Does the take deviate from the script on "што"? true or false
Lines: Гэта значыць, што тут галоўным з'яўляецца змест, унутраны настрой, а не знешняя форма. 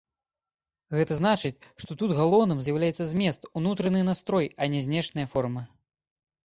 false